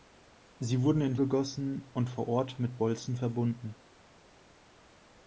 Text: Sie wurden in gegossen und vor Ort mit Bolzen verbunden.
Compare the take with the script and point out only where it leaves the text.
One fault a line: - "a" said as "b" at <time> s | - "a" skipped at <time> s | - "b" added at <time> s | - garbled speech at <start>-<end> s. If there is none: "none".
none